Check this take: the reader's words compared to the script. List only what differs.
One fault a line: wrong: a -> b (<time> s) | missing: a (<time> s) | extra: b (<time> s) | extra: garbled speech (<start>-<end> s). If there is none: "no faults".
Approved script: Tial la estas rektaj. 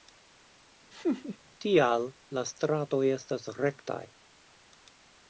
extra: stratoj (2.5 s)